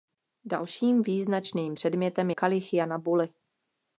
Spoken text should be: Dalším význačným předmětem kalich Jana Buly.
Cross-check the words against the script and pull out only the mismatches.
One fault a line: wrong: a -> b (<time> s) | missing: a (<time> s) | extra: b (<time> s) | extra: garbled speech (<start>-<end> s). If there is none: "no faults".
no faults